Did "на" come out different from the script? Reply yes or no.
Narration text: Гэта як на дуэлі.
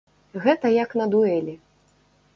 no